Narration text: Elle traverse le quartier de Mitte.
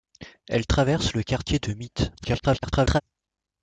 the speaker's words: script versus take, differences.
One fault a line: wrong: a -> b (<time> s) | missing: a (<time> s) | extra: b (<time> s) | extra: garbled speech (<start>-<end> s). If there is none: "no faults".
extra: garbled speech (2.2-3.0 s)